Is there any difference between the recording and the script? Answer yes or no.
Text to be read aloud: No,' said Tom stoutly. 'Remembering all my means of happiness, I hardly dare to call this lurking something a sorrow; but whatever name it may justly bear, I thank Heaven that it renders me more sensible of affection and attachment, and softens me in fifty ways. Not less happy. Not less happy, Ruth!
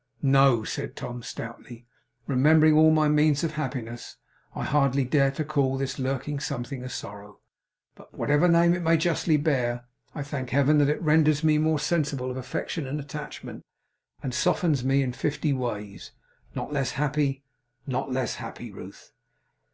no